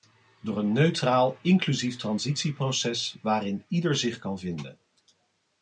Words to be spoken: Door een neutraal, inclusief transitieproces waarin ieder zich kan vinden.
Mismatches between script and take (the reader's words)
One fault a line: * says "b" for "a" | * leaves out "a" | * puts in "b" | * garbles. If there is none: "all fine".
all fine